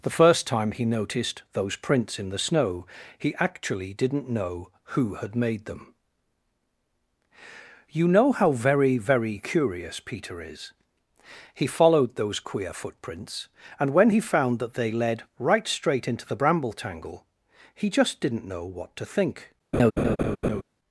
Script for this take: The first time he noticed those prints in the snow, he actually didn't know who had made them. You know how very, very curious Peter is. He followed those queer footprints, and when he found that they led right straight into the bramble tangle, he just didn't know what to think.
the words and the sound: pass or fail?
fail